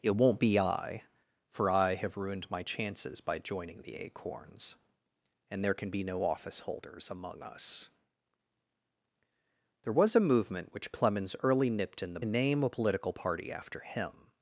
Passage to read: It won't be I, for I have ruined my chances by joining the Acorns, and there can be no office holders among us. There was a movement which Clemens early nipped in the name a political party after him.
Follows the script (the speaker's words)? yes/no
yes